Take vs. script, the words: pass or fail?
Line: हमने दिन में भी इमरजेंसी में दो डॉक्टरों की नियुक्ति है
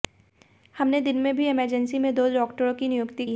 pass